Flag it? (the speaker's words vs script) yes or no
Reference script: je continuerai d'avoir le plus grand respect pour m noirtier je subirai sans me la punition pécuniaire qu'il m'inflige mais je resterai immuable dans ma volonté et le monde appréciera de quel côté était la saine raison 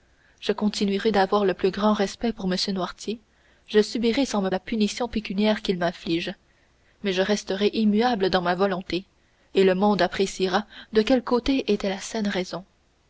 no